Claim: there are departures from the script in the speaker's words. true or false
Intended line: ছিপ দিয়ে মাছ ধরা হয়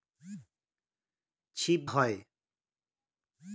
true